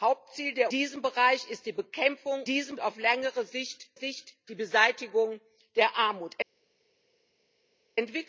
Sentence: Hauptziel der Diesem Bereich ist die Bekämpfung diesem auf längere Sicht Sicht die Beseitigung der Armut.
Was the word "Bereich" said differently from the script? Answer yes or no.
no